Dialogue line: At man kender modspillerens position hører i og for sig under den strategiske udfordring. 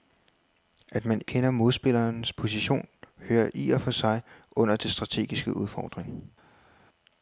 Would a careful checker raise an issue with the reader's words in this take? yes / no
no